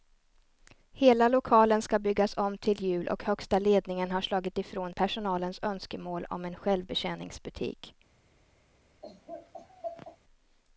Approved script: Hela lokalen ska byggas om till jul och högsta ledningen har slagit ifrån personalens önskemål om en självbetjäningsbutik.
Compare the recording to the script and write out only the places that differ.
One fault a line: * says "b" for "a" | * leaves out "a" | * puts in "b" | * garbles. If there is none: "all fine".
all fine